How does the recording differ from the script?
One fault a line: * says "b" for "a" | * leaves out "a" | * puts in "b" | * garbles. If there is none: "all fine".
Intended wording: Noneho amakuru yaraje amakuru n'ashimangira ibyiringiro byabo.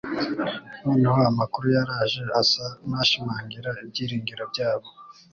* says "asa" for "amakuru"